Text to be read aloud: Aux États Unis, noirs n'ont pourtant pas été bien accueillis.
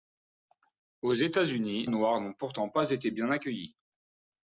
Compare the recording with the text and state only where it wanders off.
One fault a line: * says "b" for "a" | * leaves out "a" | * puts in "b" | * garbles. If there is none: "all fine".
all fine